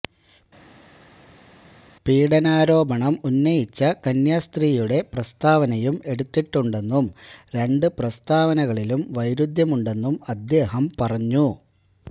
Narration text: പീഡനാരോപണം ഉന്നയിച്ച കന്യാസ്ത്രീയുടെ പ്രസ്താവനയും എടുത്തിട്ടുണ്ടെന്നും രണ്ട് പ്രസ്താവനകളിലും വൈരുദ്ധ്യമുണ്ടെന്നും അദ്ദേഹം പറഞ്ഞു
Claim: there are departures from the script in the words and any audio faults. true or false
false